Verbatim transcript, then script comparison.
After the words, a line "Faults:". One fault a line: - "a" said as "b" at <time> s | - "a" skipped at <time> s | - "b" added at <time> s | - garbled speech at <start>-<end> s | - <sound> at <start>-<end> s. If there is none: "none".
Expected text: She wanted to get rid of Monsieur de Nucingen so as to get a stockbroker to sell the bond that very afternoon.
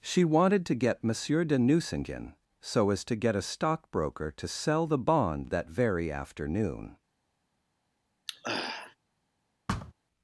She wanted to get Monsieur de Nucingen so as to get a stockbroker to sell the bond that very afternoon.
Faults:
- "rid of" skipped at 1.0 s
- throat clearing at 8.3-9.0 s
- thud at 9.7-9.9 s